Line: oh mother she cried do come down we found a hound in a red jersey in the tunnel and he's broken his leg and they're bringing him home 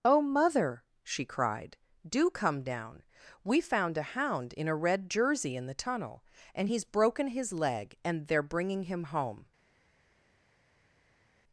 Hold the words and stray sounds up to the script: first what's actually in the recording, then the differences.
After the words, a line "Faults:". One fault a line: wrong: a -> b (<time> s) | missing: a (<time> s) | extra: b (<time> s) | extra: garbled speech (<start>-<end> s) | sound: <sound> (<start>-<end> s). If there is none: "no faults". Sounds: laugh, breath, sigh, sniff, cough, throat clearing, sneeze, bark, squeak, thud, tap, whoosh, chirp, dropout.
oh mother she cried do come down we found a hound in a red jersey in the tunnel and he's broken his leg and they're bringing him home
Faults:
no faults